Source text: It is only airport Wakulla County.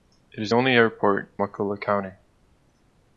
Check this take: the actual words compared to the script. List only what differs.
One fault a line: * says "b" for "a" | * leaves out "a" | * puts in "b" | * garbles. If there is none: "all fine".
all fine